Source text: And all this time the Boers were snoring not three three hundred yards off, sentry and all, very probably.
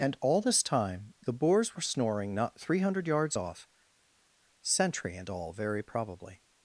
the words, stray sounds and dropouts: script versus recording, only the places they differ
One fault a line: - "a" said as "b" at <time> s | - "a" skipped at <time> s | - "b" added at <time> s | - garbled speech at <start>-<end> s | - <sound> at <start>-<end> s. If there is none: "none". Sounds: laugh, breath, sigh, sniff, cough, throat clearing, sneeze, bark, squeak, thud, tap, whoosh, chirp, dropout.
- "three" skipped at 2.8 s